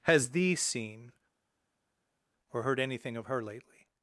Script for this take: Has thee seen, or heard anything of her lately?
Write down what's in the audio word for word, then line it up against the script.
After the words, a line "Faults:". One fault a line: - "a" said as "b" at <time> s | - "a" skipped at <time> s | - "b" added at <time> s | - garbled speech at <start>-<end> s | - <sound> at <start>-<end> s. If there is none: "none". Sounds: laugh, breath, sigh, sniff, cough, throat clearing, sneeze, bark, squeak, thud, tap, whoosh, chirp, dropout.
Has thee seen, or heard anything of her lately?
Faults:
none